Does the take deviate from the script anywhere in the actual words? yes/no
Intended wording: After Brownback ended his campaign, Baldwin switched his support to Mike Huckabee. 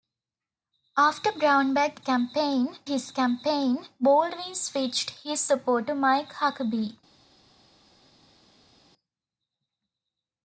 yes